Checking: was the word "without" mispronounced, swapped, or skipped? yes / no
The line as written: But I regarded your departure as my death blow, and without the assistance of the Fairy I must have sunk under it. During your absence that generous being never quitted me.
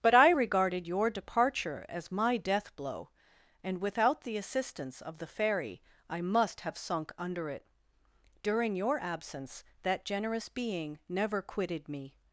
no